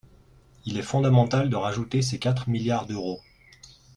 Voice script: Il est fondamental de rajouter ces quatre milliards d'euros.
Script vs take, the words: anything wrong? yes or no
no